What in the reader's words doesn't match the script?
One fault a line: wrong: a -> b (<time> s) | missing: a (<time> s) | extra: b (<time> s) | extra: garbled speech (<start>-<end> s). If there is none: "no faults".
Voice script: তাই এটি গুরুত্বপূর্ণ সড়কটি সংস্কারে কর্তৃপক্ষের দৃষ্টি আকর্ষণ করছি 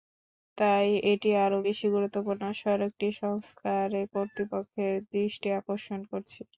extra: আরও বেশি (1.4 s)